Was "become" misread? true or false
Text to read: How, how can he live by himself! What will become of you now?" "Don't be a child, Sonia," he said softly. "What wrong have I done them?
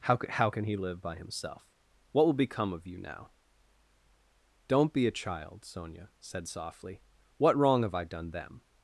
false